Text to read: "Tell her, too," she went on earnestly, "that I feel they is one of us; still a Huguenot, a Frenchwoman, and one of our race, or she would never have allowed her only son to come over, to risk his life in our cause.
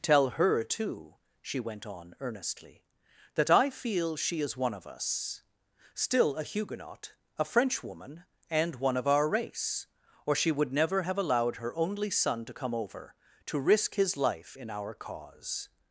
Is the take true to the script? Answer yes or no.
no